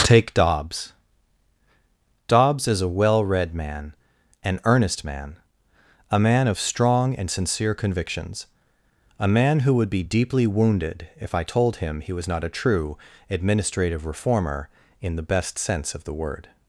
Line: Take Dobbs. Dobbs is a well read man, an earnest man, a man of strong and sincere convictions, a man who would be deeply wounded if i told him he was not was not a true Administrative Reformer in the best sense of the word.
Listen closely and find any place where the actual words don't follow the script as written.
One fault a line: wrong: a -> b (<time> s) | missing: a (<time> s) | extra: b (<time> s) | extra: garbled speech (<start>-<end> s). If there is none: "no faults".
missing: was not (12.4 s)